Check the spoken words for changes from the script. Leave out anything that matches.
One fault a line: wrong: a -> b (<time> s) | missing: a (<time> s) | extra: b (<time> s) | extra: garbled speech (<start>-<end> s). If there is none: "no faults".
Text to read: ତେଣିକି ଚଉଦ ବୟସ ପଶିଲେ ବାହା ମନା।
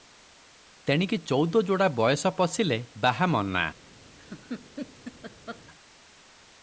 extra: ଯୋଡ଼ା (1.6 s)